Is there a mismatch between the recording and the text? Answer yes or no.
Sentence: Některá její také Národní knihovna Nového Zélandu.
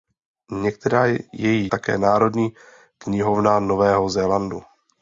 no